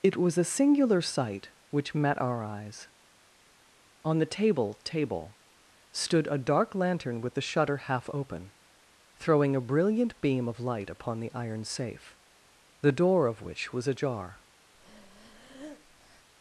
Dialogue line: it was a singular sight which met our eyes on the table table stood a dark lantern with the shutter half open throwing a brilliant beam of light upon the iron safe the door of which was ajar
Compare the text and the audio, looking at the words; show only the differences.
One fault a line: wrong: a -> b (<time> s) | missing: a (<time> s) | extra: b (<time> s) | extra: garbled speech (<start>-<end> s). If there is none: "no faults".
no faults